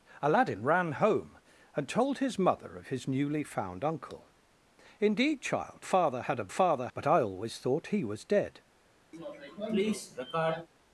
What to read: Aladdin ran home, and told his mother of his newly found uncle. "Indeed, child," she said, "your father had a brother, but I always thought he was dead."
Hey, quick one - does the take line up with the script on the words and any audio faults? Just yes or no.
no